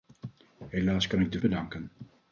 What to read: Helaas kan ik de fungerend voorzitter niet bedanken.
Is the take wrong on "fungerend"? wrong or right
wrong